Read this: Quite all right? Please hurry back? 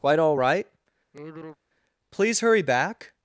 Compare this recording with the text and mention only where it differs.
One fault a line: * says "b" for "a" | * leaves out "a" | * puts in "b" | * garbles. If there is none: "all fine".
all fine